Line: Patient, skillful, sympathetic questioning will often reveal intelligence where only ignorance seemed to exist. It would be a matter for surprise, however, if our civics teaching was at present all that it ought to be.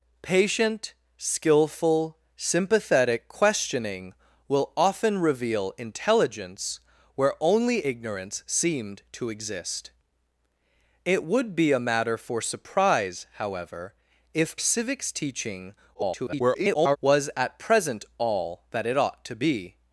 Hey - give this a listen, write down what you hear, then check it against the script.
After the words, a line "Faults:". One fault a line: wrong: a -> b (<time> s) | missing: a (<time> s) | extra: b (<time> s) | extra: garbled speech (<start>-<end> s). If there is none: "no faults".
Patient, skillful, sympathetic questioning will often reveal intelligence where only ignorance seemed to exist. It would be a matter for surprise, however, if civics teaching [garbled] was at present all that it ought to be.
Faults:
missing: our (14.6 s)
extra: garbled speech (15.9-17.0 s)